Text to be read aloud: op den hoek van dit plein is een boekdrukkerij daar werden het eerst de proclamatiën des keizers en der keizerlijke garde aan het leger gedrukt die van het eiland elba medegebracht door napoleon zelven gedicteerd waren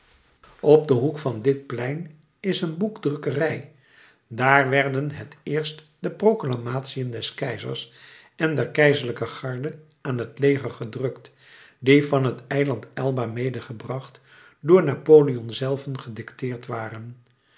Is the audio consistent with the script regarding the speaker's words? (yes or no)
yes